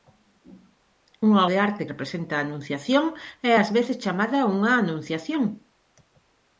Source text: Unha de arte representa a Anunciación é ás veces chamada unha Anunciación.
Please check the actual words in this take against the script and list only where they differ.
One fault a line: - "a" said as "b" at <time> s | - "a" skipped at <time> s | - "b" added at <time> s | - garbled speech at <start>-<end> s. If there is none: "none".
none